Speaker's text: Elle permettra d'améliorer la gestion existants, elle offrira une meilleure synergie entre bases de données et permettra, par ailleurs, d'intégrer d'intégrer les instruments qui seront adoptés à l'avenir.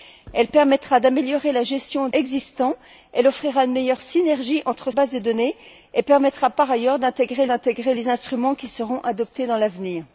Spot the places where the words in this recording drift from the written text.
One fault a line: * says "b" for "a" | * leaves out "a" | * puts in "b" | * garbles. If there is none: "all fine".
all fine